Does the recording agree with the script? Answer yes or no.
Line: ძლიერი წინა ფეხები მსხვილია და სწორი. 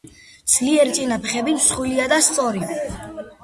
yes